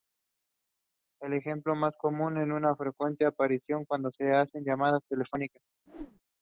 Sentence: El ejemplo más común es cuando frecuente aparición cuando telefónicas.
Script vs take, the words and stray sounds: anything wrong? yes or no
yes